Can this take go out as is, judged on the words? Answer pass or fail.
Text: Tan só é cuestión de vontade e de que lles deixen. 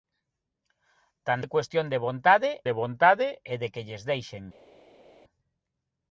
fail